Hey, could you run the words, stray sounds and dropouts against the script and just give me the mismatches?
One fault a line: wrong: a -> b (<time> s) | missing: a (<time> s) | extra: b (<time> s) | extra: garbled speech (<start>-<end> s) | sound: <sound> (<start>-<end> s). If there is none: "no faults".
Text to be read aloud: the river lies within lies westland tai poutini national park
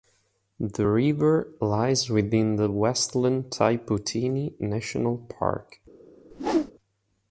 wrong: lies -> the (2.5 s)
sound: whoosh (6.3-6.7 s)